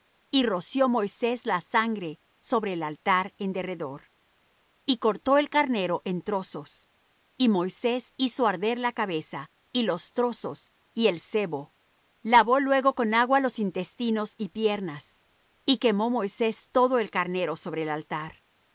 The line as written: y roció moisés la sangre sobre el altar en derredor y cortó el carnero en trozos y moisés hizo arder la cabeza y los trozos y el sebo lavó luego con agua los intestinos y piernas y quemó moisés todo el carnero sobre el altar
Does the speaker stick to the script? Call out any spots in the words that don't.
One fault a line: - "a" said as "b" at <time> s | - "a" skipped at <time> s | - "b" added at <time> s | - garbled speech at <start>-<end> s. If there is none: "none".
none